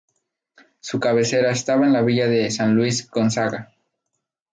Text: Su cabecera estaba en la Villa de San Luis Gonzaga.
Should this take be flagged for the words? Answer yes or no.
no